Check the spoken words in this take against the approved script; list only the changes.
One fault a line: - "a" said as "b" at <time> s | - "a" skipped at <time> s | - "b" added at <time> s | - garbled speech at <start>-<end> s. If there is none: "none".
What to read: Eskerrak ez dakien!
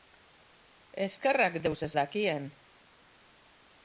- "deus" added at 1.7 s